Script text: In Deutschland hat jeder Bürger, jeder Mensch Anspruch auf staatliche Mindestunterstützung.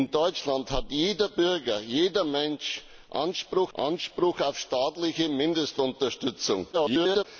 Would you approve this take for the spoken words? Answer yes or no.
no